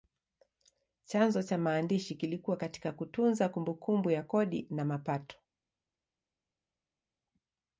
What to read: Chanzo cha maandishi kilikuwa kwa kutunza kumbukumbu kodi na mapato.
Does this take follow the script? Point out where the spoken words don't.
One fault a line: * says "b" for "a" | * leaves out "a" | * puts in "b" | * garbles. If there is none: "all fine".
* says "katika" for "kwa"
* puts in "ya"